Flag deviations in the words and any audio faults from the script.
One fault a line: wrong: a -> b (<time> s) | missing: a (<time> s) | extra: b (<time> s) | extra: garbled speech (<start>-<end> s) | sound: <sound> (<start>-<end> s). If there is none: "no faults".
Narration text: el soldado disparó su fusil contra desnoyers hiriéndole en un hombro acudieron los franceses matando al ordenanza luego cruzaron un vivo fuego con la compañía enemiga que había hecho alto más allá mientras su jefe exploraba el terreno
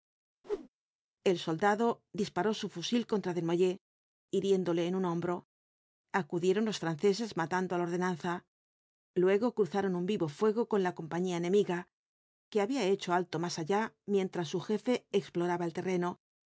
sound: whoosh (0.4-0.7 s)